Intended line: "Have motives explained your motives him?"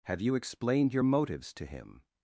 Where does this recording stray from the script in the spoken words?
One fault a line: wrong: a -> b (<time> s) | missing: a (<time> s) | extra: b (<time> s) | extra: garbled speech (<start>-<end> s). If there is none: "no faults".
wrong: motives -> you (0.2 s)
extra: to (1.5 s)